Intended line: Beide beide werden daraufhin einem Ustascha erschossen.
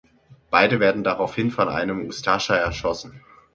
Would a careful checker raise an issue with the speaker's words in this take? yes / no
yes